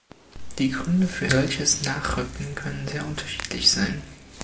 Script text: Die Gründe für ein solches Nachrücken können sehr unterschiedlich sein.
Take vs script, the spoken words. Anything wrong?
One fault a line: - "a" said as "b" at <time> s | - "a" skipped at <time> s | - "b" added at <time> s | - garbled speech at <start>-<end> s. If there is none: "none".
- "ein" skipped at 1.3 s